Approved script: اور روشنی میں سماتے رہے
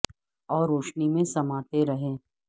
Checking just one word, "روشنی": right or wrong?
right